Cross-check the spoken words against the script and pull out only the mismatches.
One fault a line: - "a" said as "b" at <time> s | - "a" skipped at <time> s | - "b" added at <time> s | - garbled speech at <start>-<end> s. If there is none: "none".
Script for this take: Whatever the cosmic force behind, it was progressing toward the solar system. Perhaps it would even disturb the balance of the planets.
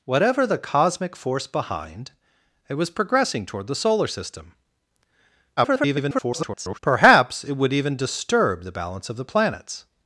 - garbled speech at 5.6-6.8 s